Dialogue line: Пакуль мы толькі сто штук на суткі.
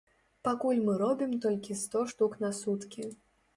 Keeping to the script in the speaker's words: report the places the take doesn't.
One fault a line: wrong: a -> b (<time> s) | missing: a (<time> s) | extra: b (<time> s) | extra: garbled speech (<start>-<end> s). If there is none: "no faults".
extra: робім (1.0 s)